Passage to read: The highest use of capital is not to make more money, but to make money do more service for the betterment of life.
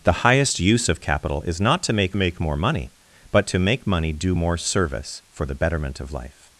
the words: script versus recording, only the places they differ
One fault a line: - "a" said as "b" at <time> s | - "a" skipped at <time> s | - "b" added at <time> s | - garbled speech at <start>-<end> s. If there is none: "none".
- "make" added at 2.2 s